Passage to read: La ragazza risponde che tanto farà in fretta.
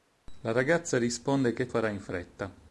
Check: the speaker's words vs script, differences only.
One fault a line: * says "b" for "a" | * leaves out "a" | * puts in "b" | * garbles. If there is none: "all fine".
* leaves out "tanto"